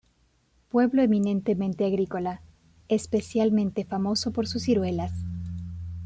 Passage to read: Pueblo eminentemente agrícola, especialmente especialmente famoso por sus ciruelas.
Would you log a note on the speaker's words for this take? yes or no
yes